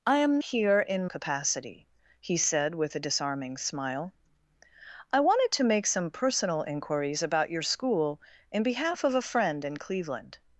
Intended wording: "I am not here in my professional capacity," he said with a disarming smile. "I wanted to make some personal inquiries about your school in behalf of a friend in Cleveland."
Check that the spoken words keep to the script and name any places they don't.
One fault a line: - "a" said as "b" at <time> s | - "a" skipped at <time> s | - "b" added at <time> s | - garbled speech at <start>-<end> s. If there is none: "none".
- "not" skipped at 0.4 s
- "my professional" skipped at 1.1 s